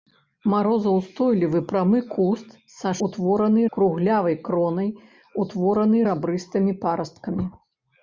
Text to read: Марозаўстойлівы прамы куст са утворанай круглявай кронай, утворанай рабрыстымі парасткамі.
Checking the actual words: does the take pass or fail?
pass